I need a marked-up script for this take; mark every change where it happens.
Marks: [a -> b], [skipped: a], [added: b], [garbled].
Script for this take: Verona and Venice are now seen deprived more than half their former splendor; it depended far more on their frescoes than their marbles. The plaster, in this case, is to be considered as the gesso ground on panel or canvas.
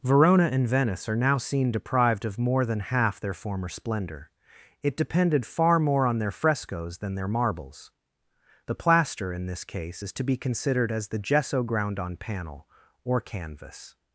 Verona and Venice are now seen deprived [added: of] more than half their former splendor; it depended far more on their frescoes than their marbles. The plaster, in this case, is to be considered as the gesso ground on panel or canvas.